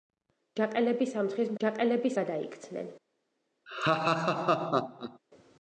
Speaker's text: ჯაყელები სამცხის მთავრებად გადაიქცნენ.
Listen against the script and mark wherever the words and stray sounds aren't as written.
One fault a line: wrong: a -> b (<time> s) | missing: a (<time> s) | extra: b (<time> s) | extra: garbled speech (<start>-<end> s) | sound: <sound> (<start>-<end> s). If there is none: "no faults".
wrong: მთავრებად -> ჯაყელები (1.6 s)
sound: laugh (3.7-5.2 s)